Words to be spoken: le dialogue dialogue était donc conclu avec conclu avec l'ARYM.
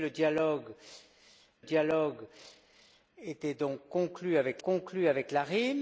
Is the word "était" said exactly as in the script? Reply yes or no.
yes